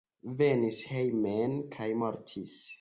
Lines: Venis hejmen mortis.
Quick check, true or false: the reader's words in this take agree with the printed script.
false